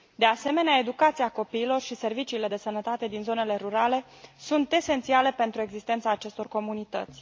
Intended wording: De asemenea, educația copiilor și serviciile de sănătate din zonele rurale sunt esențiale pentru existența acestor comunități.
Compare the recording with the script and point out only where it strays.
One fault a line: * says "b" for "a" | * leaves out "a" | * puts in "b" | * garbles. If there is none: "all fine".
all fine